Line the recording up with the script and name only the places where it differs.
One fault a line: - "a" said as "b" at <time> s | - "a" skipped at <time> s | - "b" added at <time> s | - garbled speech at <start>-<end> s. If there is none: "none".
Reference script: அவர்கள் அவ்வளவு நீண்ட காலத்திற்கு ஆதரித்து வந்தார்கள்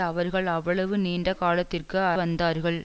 - "ஆதரித்து" skipped at 2.0 s